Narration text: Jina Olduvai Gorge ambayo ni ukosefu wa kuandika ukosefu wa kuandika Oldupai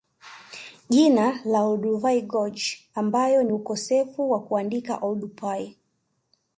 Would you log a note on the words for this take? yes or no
yes